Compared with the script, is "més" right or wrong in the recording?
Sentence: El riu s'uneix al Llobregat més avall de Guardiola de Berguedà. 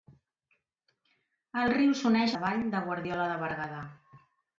wrong